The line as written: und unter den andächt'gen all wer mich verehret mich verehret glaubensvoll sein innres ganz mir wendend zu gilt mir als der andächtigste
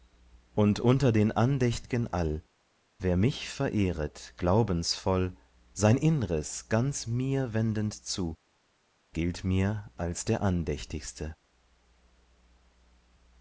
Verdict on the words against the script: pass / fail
fail